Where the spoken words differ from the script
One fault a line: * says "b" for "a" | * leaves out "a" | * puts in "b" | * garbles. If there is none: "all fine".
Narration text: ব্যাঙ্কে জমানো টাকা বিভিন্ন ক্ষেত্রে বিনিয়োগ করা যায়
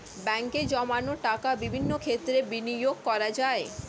all fine